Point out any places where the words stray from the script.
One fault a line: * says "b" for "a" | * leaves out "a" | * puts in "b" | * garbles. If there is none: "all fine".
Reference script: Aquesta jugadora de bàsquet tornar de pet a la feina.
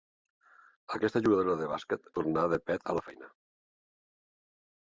all fine